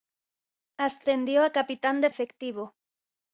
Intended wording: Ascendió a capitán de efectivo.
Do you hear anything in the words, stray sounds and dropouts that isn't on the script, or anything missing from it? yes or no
no